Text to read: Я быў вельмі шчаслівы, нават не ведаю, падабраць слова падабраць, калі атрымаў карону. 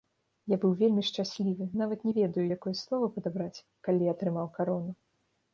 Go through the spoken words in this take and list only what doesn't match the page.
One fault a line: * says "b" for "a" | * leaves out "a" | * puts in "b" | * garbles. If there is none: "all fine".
* says "якое" for "падабраць"